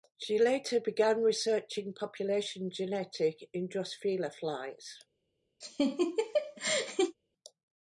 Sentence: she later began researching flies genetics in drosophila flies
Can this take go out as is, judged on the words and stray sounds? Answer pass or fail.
fail